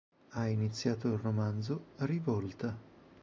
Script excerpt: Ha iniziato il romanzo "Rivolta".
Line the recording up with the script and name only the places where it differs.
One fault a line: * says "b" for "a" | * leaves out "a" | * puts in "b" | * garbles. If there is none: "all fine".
all fine